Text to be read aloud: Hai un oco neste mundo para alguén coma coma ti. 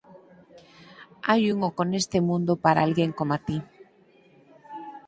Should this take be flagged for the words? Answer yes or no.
yes